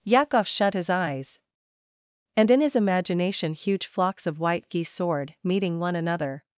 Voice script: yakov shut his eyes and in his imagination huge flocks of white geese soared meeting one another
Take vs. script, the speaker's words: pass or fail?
pass